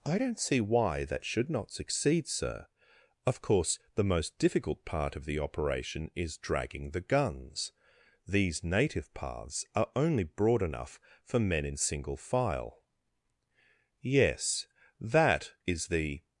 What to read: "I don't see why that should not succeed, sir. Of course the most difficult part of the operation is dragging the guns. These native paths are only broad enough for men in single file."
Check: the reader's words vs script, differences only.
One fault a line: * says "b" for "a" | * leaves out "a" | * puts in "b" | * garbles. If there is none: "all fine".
* puts in "Yes that is the"